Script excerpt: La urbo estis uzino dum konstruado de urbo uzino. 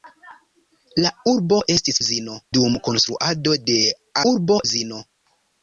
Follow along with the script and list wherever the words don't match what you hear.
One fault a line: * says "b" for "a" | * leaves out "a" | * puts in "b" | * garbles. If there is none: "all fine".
all fine